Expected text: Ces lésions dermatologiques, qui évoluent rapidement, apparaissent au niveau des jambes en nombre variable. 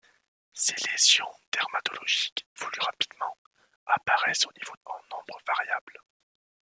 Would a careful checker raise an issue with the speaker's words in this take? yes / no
yes